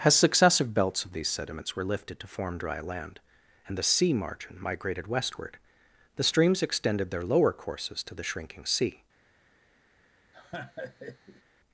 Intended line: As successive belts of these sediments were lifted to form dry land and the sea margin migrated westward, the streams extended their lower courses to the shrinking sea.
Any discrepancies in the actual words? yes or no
no